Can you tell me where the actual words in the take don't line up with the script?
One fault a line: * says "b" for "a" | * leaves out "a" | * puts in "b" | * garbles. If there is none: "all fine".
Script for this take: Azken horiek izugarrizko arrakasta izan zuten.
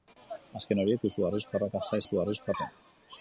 * says "izugarrizko" for "izan"